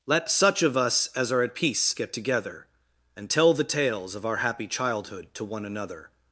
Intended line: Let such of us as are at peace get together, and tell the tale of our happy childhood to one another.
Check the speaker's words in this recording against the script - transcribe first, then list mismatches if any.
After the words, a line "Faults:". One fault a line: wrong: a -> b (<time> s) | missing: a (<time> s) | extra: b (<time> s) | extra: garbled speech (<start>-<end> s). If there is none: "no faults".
Let such of us as are at peace get together, and tell the tales of our happy childhood to one another.
Faults:
wrong: tale -> tales (3.6 s)